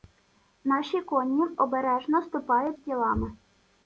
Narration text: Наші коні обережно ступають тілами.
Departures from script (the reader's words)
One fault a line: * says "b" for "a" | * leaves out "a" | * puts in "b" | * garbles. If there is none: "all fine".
all fine